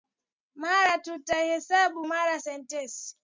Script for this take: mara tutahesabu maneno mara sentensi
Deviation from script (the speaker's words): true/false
true